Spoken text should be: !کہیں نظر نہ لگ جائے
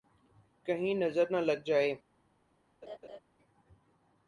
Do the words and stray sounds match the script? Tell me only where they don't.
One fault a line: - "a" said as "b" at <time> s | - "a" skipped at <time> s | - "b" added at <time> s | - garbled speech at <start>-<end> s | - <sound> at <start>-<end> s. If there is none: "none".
- laugh at 2.8-3.2 s